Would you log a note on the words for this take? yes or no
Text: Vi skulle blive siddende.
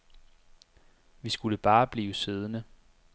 yes